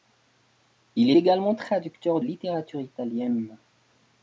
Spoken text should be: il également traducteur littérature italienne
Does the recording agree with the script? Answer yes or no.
yes